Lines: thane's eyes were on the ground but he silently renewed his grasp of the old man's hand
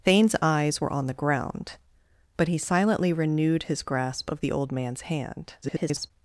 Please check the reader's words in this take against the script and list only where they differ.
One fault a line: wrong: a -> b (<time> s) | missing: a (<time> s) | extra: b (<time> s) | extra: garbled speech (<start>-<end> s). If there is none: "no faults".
extra: garbled speech (5.6-6.1 s)